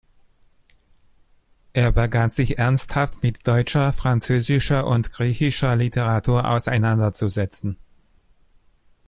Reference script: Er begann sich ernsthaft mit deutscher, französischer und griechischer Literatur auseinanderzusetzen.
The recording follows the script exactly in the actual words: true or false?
true